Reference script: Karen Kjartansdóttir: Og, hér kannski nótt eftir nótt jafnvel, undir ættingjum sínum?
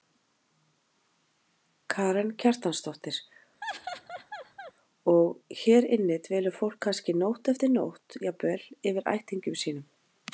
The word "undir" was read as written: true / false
false